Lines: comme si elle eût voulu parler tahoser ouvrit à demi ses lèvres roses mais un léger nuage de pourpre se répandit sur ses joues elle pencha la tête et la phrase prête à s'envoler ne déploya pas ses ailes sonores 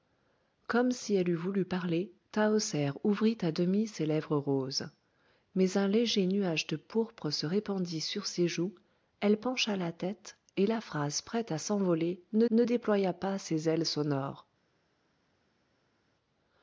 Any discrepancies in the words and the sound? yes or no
yes